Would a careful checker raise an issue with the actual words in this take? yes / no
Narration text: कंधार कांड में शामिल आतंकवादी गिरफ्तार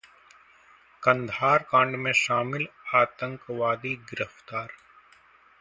no